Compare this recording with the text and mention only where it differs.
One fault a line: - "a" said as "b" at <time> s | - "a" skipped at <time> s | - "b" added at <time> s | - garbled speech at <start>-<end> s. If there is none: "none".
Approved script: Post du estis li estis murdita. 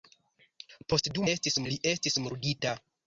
none